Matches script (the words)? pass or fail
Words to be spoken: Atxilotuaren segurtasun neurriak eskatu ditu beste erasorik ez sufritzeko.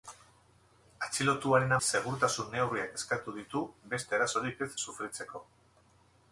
pass